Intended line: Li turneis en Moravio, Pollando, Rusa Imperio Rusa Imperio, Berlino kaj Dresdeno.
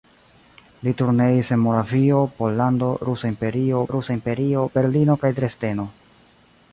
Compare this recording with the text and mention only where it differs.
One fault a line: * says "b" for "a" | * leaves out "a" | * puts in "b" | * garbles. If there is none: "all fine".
all fine